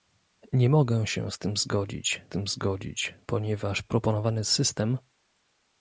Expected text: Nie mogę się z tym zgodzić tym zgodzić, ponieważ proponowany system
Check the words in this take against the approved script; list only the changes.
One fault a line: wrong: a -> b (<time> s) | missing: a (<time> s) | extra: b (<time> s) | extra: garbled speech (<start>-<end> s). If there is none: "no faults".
no faults